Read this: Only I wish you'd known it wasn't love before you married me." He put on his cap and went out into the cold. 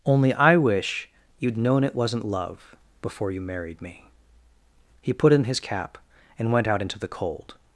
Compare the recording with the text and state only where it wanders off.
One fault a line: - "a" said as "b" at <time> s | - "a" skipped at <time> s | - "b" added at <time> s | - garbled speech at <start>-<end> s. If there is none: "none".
- "on" said as "in" at 5.3 s